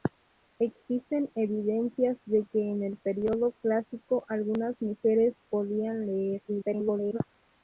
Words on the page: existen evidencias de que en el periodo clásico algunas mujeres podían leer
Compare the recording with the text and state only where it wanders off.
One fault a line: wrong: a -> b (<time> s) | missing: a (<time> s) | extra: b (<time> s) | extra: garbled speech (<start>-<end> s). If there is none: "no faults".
extra: garbled speech (6.5-7.2 s)